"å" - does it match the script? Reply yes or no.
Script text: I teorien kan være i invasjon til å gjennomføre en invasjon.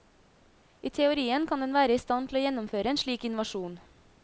yes